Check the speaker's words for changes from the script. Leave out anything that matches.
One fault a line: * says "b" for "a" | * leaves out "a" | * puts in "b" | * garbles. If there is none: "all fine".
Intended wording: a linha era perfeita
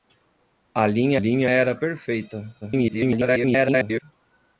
* puts in "linha"
* garbles